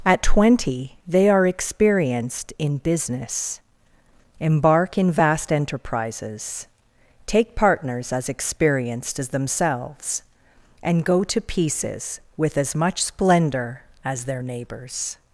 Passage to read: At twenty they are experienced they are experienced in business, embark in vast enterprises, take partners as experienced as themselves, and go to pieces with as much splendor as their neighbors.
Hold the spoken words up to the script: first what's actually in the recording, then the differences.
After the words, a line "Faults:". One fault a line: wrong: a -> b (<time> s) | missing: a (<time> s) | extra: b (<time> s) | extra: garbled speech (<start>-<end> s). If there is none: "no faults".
At twenty they are experienced in business, embark in vast enterprises, take partners as experienced as themselves, and go to pieces with as much splendor as their neighbors.
Faults:
missing: they are experienced (2.5 s)